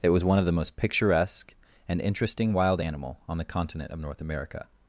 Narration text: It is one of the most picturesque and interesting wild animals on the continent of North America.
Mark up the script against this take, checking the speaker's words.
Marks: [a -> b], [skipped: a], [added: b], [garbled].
It [is -> was] one of the most picturesque and interesting wild [animals -> animal] on the continent of North America.